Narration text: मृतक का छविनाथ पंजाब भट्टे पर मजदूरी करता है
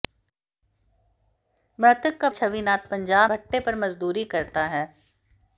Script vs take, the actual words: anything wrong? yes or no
no